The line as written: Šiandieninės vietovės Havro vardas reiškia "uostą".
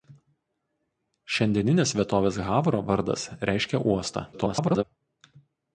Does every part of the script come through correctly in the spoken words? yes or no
no